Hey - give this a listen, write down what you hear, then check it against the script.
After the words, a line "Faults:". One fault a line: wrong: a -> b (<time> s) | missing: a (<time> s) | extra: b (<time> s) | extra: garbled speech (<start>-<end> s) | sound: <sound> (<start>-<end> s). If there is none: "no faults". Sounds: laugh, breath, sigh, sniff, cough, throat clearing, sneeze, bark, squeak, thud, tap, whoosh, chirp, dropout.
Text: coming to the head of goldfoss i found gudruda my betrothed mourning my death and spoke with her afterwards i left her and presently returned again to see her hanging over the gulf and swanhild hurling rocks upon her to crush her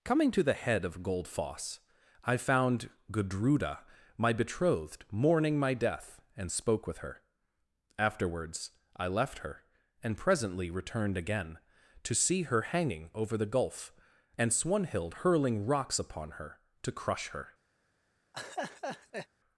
coming to the head of goldfoss i found gudruda my betrothed mourning my death and spoke with her afterwards i left her and presently returned again to see her hanging over the gulf and swanhild hurling rocks upon her to crush her
Faults:
sound: laugh (18.3-19.3 s)